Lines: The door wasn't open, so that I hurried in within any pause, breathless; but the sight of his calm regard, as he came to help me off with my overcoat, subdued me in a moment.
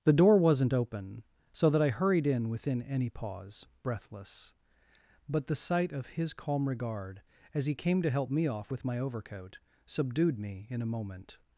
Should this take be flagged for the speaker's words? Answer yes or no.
no